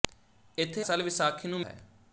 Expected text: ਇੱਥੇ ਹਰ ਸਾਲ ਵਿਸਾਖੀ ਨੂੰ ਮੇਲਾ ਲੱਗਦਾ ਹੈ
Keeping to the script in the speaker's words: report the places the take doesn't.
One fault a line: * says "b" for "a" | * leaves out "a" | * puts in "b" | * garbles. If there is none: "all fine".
* leaves out "ਹਰ"
* leaves out "ਮੇਲਾ ਲੱਗਦਾ"